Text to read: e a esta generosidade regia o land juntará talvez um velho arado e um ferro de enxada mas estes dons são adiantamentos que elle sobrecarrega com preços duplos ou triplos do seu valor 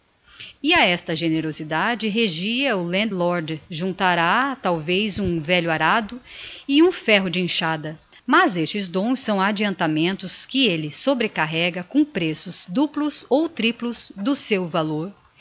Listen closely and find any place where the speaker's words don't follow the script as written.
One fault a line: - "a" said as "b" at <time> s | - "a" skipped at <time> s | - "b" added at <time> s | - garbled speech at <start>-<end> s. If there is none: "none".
- "lord" added at 3.1 s